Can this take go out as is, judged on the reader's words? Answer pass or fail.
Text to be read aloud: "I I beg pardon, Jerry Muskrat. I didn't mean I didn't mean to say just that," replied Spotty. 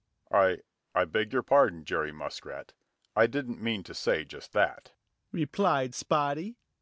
fail